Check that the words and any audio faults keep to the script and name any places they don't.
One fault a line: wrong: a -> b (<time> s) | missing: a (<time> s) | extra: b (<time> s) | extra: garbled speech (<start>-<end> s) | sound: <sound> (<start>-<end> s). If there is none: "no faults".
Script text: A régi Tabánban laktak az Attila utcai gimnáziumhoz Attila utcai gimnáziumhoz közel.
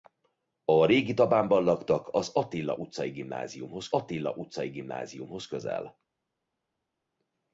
no faults